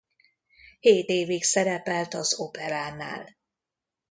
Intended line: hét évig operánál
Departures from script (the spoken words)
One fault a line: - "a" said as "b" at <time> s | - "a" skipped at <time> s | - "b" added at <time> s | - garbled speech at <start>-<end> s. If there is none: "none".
- "szerepelt az" added at 1.4 s